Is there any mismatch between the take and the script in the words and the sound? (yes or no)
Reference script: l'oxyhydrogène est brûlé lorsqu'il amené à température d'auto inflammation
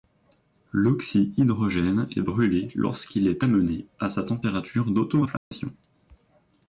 yes